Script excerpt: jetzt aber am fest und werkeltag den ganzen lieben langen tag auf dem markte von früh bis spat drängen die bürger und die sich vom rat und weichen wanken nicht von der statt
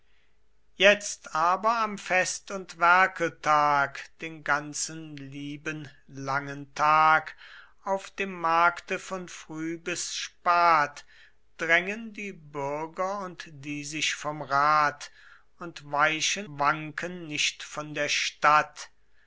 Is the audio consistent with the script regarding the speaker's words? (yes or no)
yes